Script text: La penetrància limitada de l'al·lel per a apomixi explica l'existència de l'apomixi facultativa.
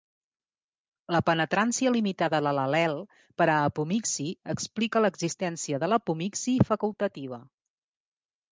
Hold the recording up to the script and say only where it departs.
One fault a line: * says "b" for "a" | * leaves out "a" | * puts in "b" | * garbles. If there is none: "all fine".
all fine